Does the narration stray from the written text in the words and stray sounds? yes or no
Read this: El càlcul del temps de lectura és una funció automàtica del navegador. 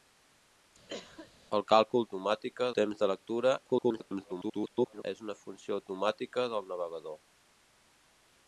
yes